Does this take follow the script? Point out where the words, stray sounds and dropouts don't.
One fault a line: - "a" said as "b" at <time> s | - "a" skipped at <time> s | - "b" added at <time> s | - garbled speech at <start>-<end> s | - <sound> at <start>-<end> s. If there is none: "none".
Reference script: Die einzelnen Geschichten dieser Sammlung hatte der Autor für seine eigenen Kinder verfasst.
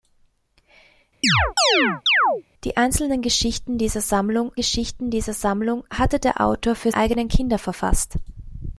- chirp at 1.2-2.4 s
- "Geschichten dieser Sammlung" added at 4.5 s
- "seine" skipped at 6.9 s